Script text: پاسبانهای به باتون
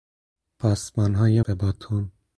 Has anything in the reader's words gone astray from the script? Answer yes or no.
no